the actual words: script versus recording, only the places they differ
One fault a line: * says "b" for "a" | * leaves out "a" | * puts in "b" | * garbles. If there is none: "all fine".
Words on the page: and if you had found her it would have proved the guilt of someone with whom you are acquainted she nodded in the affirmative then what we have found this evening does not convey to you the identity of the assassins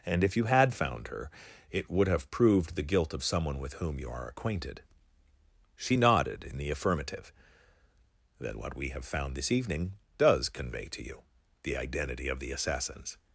* leaves out "not"